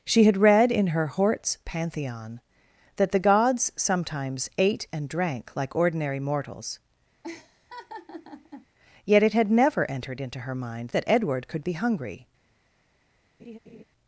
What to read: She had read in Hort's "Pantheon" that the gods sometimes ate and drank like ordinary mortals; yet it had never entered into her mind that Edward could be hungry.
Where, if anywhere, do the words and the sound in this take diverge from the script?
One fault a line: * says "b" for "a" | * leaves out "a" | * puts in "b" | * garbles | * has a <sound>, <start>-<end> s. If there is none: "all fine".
* puts in "her"
* has a laugh, 7.2-8.7 s
* has a laugh, 13.4-13.8 s